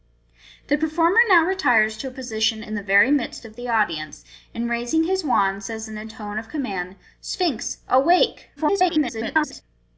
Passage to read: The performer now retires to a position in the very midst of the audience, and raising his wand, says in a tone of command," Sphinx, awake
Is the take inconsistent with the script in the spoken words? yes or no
yes